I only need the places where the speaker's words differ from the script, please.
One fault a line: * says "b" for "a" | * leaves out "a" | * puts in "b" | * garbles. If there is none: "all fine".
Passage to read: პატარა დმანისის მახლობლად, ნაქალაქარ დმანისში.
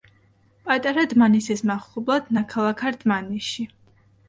all fine